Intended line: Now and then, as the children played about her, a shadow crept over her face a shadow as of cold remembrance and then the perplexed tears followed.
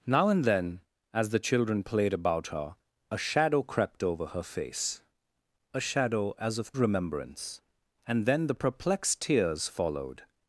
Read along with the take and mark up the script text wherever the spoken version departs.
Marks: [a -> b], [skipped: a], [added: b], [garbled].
Now and then, as the children played about her, a shadow crept over her face a shadow as of [skipped: cold] remembrance and then the perplexed tears followed.